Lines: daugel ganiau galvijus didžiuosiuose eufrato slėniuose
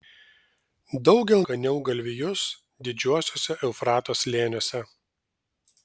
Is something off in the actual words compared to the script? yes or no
no